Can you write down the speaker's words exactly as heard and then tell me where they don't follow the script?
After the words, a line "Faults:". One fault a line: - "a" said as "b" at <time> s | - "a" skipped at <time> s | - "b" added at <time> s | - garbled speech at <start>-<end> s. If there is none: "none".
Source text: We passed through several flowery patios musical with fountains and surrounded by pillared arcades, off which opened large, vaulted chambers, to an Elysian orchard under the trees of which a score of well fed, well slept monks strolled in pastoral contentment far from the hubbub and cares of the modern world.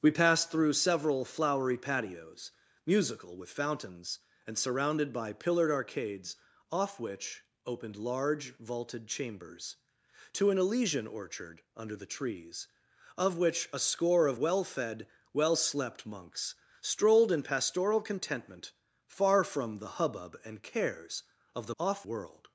We passed through several flowery patios musical with fountains and surrounded by pillared arcades, off which opened large, vaulted chambers, to an Elysian orchard under the trees of which a score of well fed, well slept monks strolled in pastoral contentment far from the hubbub and cares of the off world.
Faults:
- "modern" said as "off" at 21.8 s